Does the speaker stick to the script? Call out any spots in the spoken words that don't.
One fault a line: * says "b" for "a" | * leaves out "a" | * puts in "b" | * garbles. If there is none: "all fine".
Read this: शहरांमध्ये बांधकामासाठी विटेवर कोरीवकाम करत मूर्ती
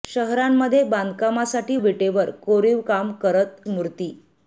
all fine